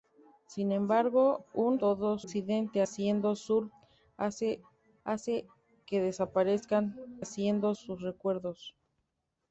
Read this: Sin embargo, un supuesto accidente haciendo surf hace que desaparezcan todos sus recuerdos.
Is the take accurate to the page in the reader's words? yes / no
no